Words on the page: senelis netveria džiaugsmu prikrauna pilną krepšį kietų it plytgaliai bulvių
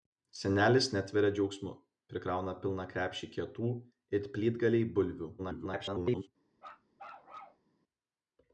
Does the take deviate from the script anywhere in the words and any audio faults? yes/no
yes